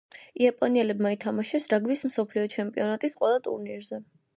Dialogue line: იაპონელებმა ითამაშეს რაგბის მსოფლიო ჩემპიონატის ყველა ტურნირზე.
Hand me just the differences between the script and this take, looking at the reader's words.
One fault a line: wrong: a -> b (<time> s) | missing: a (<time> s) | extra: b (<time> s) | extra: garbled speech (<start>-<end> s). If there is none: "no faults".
no faults